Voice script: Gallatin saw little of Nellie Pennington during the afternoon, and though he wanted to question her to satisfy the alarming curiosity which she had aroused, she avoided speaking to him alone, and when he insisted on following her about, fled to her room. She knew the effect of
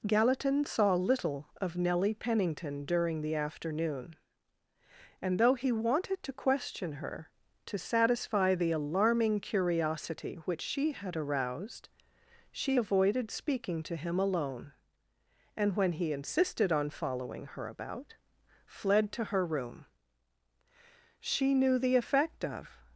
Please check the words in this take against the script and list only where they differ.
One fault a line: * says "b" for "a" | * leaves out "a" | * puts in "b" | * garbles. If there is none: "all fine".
all fine